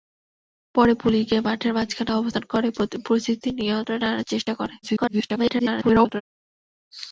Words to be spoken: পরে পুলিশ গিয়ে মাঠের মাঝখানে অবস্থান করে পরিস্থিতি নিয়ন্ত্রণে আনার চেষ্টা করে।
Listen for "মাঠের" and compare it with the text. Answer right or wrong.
right